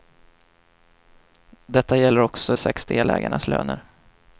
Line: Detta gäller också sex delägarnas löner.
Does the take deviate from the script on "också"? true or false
false